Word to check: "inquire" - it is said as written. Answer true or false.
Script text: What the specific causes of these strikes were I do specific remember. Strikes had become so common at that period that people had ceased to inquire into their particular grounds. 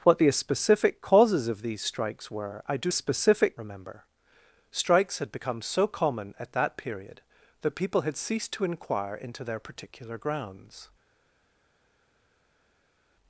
true